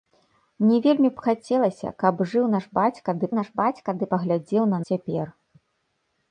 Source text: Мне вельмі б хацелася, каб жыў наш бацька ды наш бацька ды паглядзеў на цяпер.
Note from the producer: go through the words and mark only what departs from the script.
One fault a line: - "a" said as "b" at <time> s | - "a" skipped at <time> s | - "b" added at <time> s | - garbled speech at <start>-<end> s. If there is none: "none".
none